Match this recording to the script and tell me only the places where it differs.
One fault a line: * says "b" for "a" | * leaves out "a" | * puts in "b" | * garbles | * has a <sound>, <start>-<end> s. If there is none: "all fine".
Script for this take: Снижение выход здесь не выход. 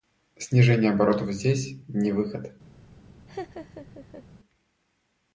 * says "оборотов" for "выход"
* has a laugh, 3.3-4.3 s